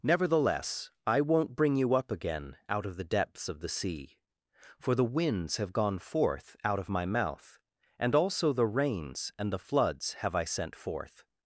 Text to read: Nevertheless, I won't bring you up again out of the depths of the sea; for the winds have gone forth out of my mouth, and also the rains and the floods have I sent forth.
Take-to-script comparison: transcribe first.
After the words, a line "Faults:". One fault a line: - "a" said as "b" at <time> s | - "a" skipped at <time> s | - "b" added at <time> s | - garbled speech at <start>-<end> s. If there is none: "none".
Nevertheless, I won't bring you up again out of the depths of the sea; for the winds have gone forth out of my mouth, and also the rains and the floods have I sent forth.
Faults:
none